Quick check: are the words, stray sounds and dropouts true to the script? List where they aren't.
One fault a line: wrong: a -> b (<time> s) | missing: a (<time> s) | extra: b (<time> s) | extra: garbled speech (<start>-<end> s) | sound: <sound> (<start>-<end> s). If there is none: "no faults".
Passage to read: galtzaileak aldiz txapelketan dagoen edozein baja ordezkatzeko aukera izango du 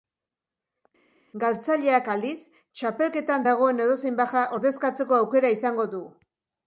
no faults